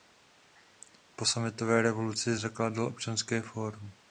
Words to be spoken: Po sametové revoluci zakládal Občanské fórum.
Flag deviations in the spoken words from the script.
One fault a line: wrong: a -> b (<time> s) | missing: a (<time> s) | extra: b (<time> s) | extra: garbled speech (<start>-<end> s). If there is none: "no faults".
no faults